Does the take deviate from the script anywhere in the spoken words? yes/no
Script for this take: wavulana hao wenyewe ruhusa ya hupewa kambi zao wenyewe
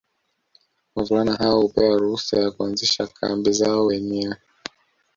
yes